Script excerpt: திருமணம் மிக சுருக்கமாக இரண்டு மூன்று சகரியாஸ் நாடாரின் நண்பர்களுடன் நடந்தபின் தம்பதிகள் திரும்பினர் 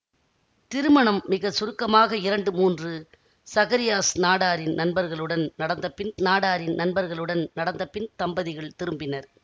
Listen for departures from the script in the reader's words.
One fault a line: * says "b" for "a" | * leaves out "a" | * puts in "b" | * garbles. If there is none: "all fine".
* puts in "நாடாரின் நண்பர்களுடன் நடந்தபின்"